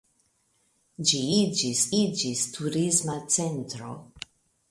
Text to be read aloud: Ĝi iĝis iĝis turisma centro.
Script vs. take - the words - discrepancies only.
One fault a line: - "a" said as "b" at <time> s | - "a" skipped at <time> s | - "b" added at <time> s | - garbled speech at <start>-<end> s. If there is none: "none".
none